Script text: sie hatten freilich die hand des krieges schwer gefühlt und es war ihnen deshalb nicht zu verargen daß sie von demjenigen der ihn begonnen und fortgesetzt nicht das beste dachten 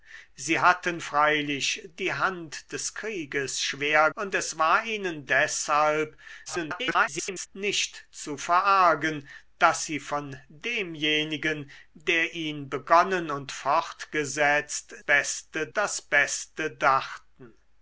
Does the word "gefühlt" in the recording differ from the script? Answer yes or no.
yes